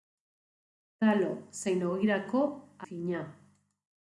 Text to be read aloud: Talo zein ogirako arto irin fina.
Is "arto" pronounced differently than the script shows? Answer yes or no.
yes